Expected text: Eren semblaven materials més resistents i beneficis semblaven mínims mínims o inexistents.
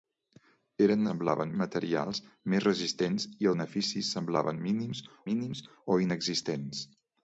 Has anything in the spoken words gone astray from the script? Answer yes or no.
no